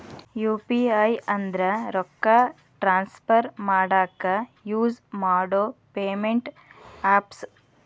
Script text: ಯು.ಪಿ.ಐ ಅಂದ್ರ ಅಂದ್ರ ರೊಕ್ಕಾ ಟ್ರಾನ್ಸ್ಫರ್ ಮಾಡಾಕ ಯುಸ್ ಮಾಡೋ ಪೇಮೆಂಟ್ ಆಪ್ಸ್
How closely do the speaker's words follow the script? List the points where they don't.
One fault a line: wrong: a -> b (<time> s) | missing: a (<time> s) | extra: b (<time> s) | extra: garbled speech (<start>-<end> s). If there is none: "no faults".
missing: ಅಂದ್ರ (1.6 s)